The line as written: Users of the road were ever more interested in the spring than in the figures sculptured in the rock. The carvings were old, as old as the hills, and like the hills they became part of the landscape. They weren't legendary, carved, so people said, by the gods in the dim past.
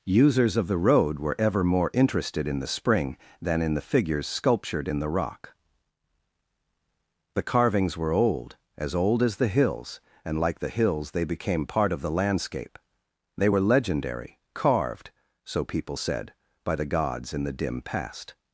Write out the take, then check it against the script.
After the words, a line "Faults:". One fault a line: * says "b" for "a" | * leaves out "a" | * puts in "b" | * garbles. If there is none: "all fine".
Users of the road were ever more interested in the spring than in the figures sculptured in the rock. The carvings were old, as old as the hills, and like the hills they became part of the landscape. They were legendary, carved, so people said, by the gods in the dim past.
Faults:
* says "were" for "weren't"